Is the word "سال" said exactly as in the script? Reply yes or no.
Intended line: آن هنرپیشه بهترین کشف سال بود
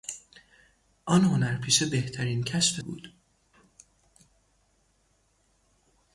no